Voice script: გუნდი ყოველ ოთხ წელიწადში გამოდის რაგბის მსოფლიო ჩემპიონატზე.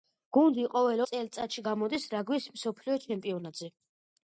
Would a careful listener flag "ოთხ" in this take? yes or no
yes